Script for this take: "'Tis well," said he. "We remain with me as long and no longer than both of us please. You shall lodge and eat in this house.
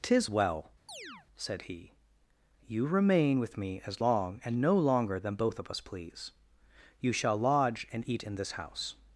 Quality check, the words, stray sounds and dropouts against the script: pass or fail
fail